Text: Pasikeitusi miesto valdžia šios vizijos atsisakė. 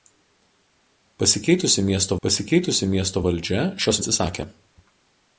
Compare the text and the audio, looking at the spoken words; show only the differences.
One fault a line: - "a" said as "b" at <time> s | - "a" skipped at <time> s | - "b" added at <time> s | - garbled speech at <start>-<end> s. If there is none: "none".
- "pasikeitusi miesto" added at 2.3 s
- "vizijos" skipped at 4.0 s